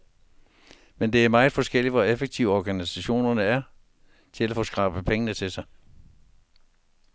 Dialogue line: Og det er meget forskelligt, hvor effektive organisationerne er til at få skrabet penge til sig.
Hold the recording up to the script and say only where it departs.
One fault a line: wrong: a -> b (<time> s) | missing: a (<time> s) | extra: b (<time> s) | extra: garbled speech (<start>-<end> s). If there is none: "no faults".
wrong: Og -> Men (1.0 s)